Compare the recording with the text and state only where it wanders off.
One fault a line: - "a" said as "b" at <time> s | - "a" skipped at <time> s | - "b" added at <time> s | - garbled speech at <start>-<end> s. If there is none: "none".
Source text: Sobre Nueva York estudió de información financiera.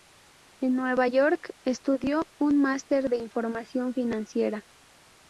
- "Sobre" said as "En" at 0.6 s
- "un máster" added at 2.4 s